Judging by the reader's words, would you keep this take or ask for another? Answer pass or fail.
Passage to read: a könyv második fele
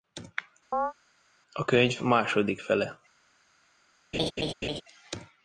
pass